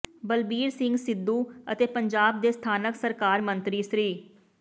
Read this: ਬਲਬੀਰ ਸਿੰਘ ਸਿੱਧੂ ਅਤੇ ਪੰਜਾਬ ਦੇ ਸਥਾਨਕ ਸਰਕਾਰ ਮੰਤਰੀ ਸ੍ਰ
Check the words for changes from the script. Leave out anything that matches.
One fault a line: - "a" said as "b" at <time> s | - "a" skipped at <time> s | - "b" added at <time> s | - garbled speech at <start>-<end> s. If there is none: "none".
none